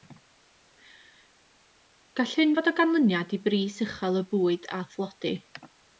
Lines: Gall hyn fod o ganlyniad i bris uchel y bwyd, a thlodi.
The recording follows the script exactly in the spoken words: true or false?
true